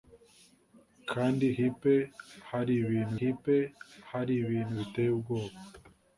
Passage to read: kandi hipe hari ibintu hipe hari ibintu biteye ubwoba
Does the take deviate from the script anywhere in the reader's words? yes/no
no